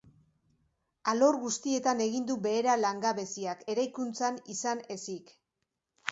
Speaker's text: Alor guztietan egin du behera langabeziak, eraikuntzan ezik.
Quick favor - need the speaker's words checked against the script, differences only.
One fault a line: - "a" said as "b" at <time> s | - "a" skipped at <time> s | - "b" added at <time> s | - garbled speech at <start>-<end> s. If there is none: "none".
- "izan" added at 4.6 s